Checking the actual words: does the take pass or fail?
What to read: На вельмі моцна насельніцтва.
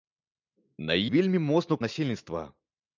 pass